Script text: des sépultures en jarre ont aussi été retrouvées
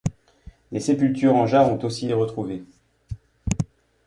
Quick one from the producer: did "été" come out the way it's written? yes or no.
no